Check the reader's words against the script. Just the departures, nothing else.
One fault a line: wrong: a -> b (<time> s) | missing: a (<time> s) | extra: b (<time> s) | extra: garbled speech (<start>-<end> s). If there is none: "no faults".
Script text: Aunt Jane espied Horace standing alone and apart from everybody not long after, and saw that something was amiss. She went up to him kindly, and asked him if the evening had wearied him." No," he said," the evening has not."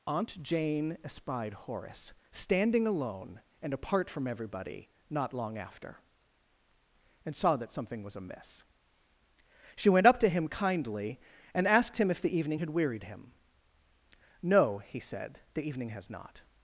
no faults